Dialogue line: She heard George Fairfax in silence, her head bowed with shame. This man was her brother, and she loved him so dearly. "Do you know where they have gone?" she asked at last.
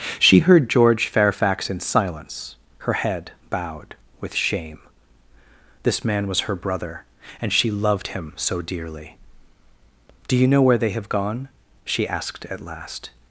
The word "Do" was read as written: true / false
true